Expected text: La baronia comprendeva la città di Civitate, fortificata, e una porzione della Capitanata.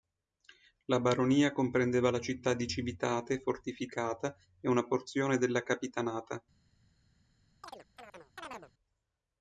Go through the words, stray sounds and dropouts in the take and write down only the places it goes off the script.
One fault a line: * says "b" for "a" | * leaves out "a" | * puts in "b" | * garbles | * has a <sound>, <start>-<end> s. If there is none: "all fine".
* has a chirp, 7.6-8.7 s